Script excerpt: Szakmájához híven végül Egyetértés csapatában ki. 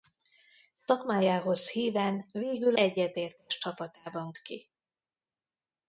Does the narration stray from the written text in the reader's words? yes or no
no